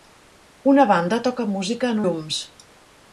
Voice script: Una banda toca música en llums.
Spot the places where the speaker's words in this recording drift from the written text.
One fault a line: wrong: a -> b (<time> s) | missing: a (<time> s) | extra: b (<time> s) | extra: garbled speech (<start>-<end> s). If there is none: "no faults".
no faults